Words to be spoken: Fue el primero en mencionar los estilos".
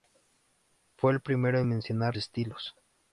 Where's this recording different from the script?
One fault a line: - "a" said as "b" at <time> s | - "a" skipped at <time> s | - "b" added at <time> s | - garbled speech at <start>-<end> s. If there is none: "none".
- "los" skipped at 2.2 s